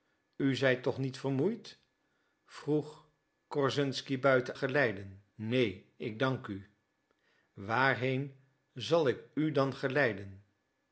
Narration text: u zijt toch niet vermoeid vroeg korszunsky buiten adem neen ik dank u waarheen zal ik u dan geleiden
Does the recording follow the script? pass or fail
fail